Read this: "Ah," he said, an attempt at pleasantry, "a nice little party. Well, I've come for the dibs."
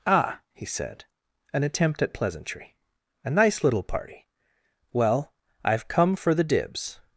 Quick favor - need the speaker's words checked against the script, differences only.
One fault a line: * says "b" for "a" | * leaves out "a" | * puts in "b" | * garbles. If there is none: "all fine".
all fine